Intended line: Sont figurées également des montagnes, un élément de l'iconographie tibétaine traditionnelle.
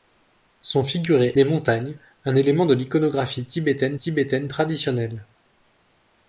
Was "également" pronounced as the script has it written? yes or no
no